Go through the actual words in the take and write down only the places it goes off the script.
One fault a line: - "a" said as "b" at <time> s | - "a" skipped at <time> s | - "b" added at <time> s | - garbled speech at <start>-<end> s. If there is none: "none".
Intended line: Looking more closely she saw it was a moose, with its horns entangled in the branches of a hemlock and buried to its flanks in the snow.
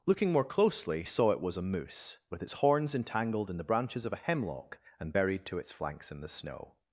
- "she" skipped at 1.0 s